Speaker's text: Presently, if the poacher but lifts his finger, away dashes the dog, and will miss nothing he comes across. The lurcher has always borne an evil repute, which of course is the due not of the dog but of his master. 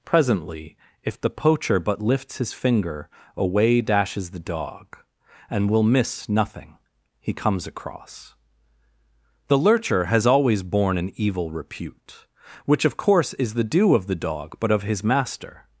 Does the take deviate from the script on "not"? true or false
true